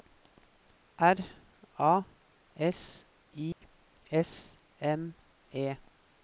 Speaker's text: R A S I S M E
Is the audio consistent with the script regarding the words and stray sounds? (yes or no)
no